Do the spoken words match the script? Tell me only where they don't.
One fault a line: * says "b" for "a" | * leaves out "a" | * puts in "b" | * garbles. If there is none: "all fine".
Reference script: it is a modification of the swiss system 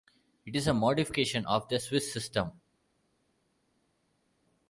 all fine